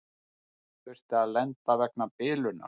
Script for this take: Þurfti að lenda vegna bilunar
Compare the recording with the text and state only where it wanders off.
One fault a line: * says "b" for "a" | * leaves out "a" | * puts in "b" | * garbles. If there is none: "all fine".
all fine